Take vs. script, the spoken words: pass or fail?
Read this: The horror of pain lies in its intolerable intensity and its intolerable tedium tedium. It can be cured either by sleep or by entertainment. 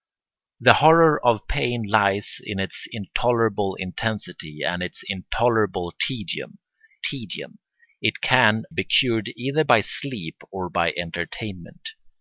pass